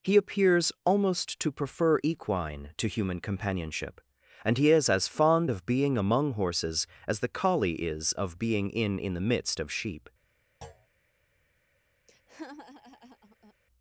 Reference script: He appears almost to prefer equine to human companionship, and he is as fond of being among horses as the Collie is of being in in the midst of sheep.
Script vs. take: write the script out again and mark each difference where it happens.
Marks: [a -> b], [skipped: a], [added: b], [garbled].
He appears almost to prefer equine to human companionship, and he is as fond of being among horses as the Collie is of being in in the midst of sheep.